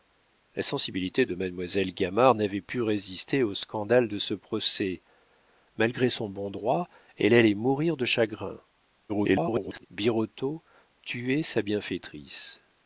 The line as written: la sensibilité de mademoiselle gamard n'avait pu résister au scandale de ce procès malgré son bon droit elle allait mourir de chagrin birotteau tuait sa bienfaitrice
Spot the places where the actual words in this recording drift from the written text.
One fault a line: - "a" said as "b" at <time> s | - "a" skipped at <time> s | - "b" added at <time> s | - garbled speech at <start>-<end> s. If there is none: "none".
- garbled speech at 9.1-9.9 s